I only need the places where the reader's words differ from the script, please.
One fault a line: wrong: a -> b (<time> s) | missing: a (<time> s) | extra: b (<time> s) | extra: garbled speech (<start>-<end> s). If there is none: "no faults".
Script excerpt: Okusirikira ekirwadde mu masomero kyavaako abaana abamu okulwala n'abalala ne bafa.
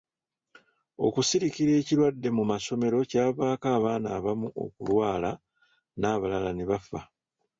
no faults